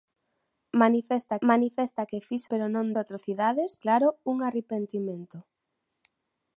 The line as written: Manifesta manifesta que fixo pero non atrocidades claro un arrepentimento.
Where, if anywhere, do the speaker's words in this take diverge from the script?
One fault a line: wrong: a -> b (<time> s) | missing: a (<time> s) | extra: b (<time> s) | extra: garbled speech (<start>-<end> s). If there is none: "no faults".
no faults